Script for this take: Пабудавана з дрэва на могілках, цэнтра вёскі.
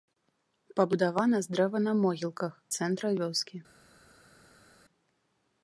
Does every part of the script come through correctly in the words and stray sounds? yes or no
yes